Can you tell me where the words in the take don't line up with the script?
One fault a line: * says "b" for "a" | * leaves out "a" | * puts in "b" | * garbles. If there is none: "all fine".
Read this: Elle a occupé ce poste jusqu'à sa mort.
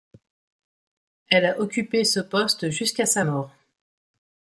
all fine